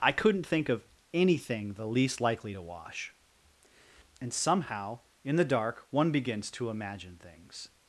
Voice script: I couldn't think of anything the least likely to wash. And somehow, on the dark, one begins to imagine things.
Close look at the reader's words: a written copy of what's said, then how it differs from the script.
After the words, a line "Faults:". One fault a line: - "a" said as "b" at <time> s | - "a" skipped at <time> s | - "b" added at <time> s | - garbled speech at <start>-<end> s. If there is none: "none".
I couldn't think of anything the least likely to wash. And somehow, in the dark, one begins to imagine things.
Faults:
- "on" said as "in" at 5.2 s